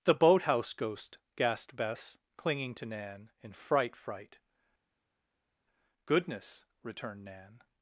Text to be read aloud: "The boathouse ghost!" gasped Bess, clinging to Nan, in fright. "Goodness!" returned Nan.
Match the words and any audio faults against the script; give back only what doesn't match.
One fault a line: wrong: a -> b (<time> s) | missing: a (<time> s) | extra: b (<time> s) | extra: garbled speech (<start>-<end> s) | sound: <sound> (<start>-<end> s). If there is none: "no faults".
extra: fright (4.0 s)